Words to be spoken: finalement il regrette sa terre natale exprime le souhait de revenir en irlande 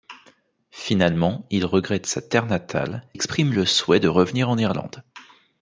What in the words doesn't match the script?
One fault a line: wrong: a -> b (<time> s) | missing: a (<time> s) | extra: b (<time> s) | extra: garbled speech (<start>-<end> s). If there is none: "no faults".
no faults